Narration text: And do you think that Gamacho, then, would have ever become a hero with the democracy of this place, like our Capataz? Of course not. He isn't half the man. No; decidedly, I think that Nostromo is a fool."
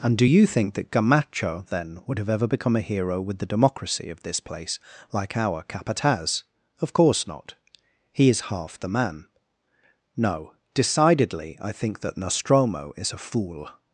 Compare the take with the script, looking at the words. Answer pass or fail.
fail